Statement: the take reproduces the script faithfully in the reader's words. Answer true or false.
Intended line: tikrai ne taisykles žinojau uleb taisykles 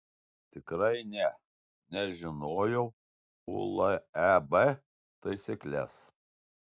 false